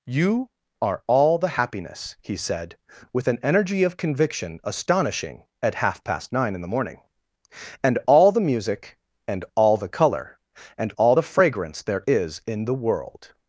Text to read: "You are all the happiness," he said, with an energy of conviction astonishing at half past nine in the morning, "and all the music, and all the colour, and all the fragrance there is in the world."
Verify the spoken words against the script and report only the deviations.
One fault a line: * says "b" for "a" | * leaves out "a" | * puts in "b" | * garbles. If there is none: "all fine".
all fine